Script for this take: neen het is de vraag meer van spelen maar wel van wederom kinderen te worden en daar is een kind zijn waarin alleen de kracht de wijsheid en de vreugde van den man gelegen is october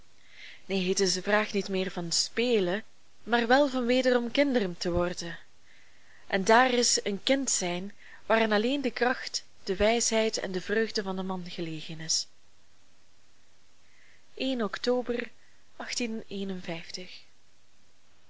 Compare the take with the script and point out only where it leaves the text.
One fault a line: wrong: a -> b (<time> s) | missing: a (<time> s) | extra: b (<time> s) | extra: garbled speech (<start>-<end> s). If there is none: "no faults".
extra: niet (1.5 s)